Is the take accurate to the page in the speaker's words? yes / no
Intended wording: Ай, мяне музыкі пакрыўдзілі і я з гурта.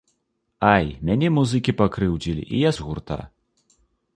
yes